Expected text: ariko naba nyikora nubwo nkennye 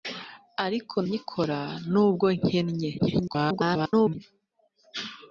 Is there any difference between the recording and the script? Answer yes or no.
yes